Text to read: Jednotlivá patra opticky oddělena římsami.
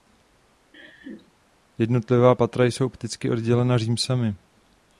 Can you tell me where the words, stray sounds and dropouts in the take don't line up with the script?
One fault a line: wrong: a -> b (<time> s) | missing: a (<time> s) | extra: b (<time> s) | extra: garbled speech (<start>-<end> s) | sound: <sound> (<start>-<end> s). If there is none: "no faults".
sound: laugh (0.7-1.3 s)
extra: jsou (2.6 s)